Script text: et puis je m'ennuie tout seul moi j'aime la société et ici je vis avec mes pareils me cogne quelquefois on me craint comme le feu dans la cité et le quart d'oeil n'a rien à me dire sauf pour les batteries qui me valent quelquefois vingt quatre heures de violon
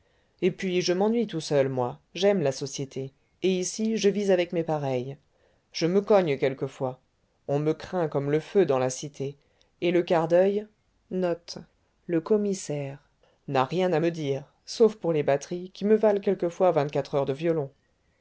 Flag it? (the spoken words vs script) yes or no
yes